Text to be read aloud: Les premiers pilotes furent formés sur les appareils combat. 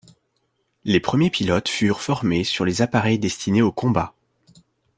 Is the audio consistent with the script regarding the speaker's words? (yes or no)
no